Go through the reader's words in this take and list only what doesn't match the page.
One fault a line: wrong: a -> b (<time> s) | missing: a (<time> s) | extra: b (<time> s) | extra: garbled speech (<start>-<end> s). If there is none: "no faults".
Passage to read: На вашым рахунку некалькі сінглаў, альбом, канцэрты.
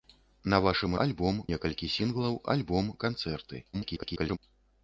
wrong: рахунку -> альбом (1.1 s)
extra: garbled speech (3.7-4.4 s)